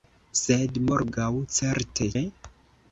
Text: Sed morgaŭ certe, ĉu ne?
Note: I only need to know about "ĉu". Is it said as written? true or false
false